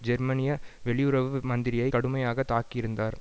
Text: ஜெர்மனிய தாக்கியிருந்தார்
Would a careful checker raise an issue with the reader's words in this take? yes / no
yes